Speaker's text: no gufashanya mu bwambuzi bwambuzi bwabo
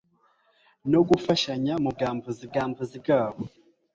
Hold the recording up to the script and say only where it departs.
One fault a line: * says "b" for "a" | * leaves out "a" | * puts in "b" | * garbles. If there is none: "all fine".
all fine